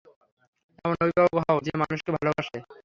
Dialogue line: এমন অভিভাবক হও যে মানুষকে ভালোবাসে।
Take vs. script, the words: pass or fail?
pass